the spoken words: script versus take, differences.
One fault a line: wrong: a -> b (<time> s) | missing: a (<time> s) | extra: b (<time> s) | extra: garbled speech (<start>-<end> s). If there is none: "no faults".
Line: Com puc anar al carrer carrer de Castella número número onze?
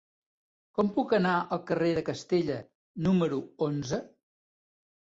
missing: carrer (1.9 s)
missing: número (3.4 s)